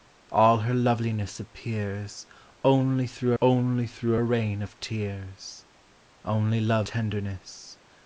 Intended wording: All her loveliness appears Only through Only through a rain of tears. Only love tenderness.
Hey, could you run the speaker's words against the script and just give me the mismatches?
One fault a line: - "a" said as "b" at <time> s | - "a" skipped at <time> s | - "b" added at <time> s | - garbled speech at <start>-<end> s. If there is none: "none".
none